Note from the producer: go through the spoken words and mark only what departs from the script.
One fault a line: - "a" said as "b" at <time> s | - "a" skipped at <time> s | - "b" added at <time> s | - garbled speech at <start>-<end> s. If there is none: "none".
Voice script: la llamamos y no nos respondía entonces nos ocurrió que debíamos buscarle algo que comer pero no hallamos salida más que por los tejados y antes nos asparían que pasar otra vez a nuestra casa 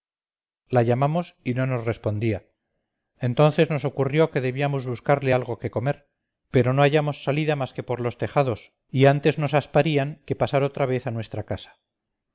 none